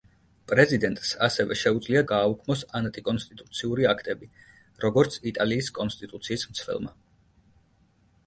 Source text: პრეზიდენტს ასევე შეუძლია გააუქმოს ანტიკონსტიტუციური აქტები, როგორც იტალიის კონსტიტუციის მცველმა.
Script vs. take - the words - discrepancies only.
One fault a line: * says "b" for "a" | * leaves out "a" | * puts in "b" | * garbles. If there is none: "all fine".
all fine